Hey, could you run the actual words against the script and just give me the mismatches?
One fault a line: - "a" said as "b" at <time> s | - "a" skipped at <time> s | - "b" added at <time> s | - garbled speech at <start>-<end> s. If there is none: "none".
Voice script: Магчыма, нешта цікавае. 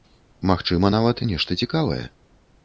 - "нават" added at 0.9 s